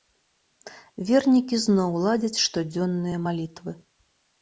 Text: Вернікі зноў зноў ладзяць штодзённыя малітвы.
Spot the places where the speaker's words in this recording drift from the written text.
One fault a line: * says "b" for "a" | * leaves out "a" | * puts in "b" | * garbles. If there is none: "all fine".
* leaves out "зноў"